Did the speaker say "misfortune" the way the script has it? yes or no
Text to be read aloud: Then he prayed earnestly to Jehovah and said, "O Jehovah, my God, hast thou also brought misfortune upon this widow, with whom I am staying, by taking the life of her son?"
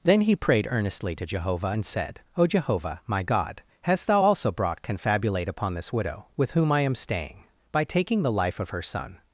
no